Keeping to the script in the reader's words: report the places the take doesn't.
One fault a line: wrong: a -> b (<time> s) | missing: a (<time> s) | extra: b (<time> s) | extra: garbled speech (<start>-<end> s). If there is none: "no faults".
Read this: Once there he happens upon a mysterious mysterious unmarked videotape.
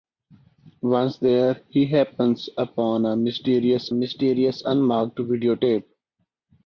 no faults